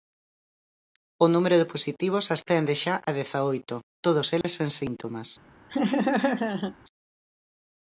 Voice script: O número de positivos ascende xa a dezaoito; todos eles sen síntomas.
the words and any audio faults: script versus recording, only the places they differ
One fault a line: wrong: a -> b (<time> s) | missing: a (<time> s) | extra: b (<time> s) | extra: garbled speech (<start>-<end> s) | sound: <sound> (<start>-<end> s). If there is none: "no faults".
sound: dropout (4.4-4.4 s)
sound: laugh (5.7-6.8 s)